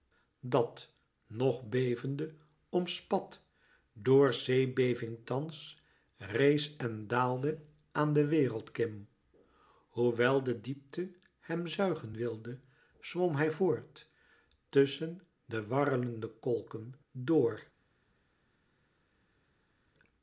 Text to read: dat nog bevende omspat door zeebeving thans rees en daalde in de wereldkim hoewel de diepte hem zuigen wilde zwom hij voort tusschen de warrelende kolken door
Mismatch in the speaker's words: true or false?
true